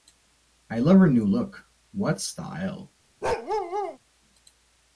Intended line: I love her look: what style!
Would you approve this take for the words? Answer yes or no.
no